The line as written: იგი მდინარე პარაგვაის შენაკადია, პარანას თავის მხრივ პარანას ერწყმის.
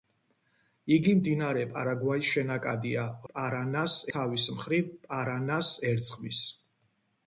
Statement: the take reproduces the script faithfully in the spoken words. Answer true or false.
true